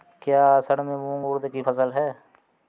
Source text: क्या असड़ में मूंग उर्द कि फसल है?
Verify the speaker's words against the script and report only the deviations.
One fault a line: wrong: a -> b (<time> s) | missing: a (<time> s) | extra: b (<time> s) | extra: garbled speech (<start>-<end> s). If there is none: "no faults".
no faults